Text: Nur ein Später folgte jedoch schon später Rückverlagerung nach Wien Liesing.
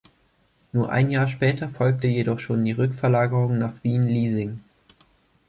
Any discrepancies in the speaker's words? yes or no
yes